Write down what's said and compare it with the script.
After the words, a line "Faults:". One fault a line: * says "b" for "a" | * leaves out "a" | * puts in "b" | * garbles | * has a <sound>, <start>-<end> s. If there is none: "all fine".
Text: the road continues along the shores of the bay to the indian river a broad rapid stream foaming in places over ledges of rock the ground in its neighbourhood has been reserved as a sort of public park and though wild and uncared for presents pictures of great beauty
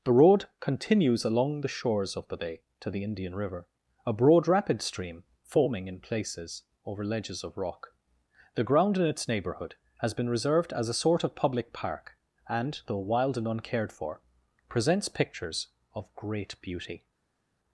the road continues along the shores of the bay to the indian river a broad rapid stream foaming in places over ledges of rock the ground in its neighbourhood has been reserved as a sort of public park and though wild and uncared for presents pictures of great beauty
Faults:
all fine